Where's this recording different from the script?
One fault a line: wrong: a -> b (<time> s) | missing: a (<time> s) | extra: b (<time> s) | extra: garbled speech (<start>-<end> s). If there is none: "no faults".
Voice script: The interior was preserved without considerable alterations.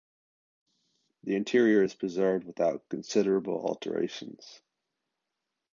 wrong: was -> is (1.8 s)